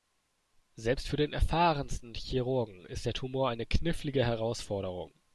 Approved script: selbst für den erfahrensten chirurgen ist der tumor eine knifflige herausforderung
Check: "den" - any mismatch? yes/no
no